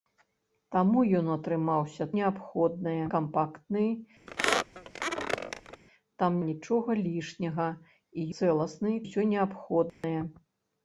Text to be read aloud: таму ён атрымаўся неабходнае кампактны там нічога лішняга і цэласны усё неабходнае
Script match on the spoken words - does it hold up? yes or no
yes